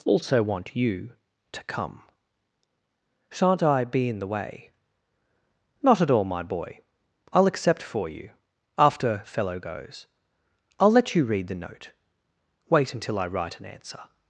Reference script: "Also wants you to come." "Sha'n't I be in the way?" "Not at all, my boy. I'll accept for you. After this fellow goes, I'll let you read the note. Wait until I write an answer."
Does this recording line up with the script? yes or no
no